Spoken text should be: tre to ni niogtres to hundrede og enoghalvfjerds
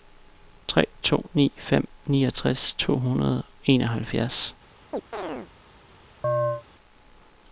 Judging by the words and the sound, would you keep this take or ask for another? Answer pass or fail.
fail